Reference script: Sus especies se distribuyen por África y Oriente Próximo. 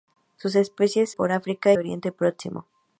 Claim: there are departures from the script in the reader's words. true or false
true